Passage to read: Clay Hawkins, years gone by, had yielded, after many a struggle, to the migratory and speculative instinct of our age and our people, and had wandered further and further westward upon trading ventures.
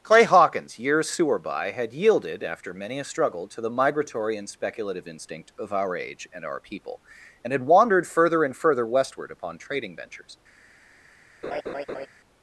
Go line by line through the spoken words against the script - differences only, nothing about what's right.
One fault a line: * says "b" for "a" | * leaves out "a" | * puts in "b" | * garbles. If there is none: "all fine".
* says "sewer" for "gone"